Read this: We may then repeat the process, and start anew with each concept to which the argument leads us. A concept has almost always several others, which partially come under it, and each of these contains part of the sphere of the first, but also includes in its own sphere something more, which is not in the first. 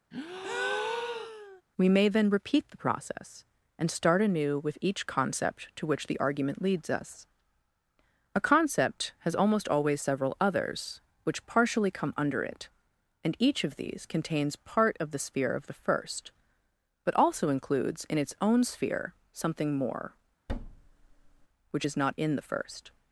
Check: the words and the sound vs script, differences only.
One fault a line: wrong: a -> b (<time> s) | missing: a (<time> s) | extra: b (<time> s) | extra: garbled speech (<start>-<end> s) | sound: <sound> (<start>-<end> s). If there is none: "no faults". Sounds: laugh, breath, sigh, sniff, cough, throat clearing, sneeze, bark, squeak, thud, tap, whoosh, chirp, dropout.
sound: breath (0.1-1.6 s)
sound: thud (20.5-21.5 s)